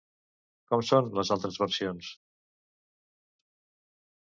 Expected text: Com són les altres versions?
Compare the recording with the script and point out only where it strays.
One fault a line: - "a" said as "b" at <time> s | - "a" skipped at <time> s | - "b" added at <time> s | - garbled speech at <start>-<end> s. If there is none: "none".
none